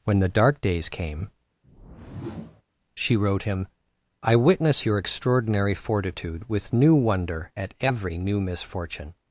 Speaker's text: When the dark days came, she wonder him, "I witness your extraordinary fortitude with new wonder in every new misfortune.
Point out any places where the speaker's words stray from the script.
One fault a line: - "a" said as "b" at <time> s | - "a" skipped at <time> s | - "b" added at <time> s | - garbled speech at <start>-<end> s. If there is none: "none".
- "wonder" said as "wrote" at 3.2 s
- "in" said as "at" at 7.6 s